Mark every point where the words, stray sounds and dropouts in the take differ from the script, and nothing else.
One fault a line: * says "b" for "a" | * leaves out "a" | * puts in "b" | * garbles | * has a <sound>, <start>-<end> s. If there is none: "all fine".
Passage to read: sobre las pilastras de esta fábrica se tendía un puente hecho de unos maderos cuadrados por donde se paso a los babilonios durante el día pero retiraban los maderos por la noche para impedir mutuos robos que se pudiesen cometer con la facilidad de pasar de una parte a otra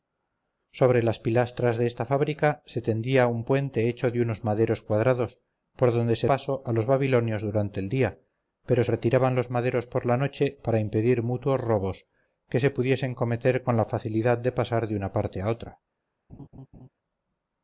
* has a laugh, 16.3-16.9 s